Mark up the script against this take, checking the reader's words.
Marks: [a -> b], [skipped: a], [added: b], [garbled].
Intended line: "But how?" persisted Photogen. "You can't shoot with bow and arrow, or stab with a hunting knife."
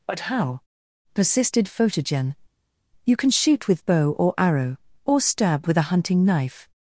"But how?" persisted Photogen. "You [can't -> can] shoot with bow [and -> or] arrow, or stab with a hunting knife."